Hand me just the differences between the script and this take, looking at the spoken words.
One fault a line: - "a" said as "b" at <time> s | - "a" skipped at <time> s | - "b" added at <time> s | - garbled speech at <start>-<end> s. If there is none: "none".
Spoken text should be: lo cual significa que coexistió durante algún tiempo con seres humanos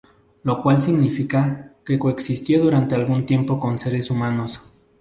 none